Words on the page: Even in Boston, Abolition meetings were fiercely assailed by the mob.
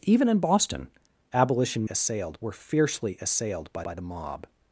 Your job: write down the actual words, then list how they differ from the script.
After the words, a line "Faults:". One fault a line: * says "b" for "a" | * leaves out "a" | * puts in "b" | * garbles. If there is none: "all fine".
Even in Boston, Abolition assailed were fiercely assailed by by the mob.
Faults:
* says "assailed" for "meetings"
* puts in "by"